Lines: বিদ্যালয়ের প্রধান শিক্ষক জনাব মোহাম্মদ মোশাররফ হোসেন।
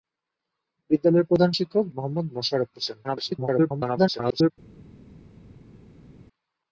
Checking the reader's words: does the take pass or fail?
fail